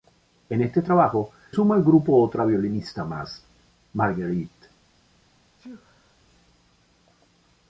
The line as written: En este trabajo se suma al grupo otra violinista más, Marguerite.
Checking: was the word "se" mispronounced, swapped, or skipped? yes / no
yes